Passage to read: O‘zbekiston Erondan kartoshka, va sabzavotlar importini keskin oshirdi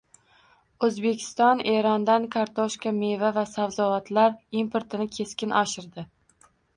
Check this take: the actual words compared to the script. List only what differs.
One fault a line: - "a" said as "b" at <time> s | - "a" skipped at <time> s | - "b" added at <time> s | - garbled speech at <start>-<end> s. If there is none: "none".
- "meva" added at 3.0 s